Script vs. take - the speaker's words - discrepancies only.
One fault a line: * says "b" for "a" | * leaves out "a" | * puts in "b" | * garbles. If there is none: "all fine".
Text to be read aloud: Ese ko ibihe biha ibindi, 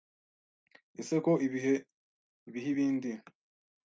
all fine